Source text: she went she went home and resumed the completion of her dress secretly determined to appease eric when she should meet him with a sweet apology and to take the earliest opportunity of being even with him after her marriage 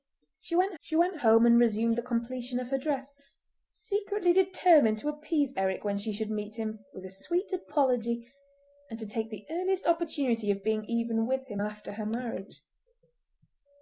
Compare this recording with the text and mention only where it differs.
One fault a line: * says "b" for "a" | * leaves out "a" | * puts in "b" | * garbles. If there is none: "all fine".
all fine